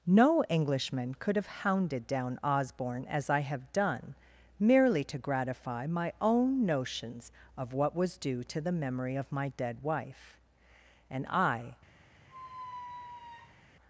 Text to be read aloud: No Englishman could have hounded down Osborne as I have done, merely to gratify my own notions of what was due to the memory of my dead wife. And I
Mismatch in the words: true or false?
false